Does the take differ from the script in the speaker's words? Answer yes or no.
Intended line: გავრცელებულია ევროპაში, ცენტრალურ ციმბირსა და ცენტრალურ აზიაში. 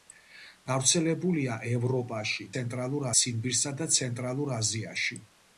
no